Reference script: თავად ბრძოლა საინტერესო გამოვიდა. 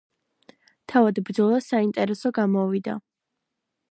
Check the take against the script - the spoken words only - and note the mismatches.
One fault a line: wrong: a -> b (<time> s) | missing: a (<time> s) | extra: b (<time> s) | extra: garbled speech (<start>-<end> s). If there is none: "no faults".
no faults